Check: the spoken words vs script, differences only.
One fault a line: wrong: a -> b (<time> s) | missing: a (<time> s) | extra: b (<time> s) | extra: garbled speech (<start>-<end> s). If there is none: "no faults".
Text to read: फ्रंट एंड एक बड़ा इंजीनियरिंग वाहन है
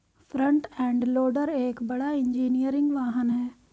extra: लोडर (1.0 s)